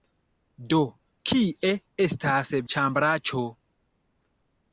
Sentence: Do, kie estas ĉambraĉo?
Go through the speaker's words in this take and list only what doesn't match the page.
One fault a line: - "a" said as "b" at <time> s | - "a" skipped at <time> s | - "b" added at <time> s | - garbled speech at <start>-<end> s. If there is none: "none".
none